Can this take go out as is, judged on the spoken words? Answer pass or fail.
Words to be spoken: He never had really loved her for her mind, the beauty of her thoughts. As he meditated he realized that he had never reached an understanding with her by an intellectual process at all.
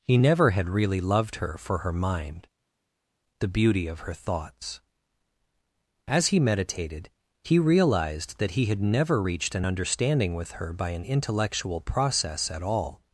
pass